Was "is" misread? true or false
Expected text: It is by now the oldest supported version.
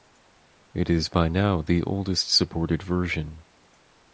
false